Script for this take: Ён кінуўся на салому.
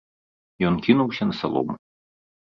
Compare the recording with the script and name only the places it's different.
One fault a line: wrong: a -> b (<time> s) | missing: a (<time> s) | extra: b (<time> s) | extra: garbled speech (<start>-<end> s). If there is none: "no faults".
no faults